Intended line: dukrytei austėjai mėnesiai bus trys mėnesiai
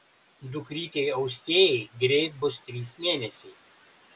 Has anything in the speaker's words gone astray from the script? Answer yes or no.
yes